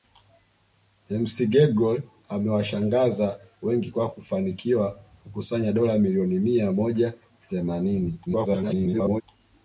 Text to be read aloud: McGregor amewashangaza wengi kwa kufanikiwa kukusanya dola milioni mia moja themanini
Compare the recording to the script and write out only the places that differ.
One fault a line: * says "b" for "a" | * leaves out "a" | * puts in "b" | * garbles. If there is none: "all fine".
* garbles